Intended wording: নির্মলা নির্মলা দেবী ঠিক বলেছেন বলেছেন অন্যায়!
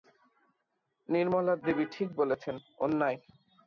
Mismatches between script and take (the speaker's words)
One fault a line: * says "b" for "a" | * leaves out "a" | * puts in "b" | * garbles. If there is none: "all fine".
* leaves out "নির্মলা"
* leaves out "বলেছেন"